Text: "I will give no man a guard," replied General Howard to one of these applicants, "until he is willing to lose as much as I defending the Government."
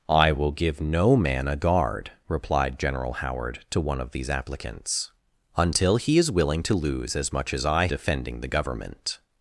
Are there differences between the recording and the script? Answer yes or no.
no